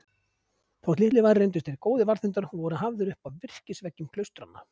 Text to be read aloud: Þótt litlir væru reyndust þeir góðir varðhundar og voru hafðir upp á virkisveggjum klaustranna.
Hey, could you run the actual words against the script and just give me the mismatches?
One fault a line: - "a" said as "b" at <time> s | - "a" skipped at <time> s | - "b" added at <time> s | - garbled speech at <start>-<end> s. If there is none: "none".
none